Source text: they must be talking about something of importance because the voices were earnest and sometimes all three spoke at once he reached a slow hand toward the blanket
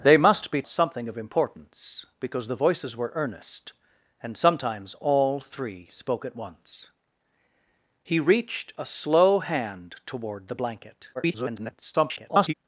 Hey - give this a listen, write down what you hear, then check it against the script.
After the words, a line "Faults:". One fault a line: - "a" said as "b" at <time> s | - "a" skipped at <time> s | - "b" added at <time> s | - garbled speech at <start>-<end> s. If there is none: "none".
they must be something of importance because the voices were earnest and sometimes all three spoke at once he reached a slow hand toward the blanket [garbled]
Faults:
- "talking about" skipped at 0.6 s
- garbled speech at 11.1-12.5 s